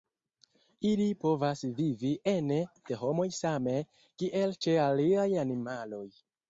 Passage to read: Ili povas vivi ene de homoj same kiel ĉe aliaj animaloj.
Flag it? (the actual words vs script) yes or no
no